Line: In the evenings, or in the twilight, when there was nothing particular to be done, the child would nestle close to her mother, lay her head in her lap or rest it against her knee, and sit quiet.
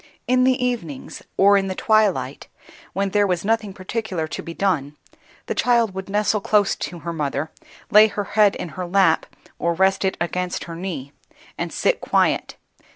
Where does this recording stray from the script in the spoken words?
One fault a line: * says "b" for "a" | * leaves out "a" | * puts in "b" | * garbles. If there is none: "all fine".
all fine